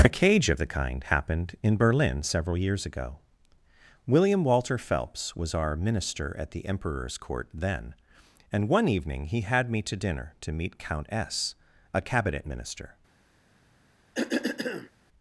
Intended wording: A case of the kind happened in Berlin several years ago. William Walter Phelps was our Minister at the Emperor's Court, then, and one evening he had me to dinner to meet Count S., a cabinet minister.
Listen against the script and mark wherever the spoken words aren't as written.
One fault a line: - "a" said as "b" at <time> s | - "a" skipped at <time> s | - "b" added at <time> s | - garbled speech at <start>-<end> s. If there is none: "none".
- "case" said as "cage" at 0.1 s